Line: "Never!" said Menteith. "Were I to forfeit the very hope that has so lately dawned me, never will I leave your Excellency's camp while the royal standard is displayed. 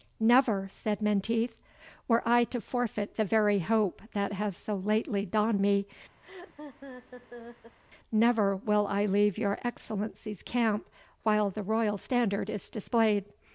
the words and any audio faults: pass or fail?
fail